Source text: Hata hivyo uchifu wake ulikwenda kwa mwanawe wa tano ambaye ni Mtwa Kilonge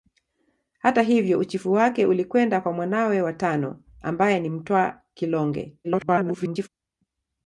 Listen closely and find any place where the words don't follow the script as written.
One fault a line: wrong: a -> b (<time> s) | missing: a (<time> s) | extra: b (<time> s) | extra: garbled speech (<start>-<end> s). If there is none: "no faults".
extra: garbled speech (5.8-6.7 s)